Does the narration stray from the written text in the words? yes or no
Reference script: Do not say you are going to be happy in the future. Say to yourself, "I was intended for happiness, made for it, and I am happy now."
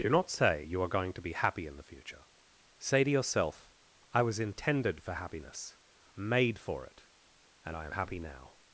no